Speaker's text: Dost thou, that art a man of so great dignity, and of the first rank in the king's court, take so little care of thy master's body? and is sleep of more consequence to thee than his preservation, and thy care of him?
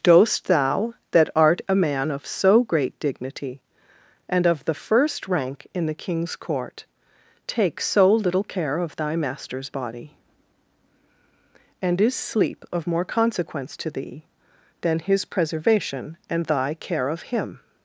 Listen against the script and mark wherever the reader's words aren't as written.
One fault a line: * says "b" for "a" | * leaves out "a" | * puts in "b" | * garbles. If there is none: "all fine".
all fine